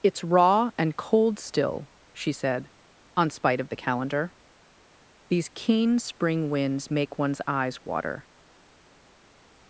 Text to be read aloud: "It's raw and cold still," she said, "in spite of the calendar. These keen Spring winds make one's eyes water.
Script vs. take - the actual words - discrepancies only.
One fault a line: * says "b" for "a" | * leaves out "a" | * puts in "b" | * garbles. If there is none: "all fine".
* says "on" for "in"